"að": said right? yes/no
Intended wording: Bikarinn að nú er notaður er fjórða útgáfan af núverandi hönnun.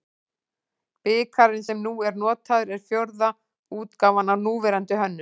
no